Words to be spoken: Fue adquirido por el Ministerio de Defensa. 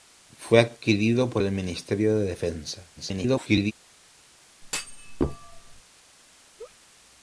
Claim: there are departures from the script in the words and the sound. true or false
true